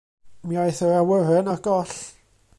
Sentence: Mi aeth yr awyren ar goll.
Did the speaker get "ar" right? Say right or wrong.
right